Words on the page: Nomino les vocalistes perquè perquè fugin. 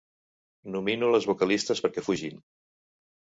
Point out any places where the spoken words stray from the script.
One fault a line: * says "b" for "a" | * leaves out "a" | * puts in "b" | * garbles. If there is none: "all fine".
* leaves out "perquè"